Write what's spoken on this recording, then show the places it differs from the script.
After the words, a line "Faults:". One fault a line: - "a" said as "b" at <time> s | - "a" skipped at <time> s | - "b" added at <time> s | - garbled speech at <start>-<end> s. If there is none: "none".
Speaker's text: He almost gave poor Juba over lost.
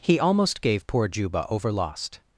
He almost gave poor Juba over lost.
Faults:
none